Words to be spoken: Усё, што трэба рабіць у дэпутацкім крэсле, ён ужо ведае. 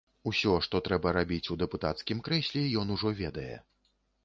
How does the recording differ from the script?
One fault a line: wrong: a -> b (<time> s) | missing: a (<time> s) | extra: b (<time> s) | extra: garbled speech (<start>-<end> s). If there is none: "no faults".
no faults